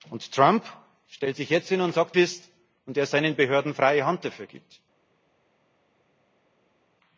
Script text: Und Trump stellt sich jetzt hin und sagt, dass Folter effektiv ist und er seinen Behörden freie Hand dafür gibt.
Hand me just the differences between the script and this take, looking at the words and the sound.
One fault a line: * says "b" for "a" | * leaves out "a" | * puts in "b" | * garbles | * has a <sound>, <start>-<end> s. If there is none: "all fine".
* leaves out "dass Folter effektiv"